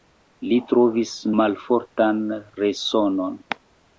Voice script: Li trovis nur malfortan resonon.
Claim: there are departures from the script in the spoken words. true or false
true